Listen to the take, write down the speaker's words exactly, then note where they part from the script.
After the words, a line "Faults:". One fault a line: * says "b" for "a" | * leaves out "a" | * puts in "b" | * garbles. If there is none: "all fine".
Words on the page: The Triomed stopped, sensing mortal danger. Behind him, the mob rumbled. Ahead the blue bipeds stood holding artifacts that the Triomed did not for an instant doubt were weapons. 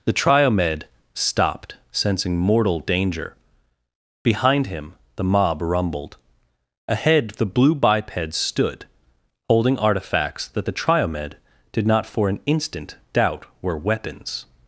The Triomed stopped, sensing mortal danger. Behind him, the mob rumbled. Ahead the blue bipeds stood holding artifacts that the Triomed did not for an instant doubt were weapons.
Faults:
all fine